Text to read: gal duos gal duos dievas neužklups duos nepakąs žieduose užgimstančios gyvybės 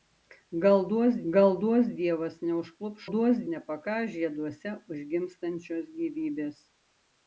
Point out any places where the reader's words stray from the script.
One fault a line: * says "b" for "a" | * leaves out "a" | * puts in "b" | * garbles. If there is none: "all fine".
all fine